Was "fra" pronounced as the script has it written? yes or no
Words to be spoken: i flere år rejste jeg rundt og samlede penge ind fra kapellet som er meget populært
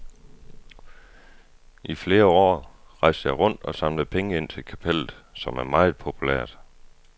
no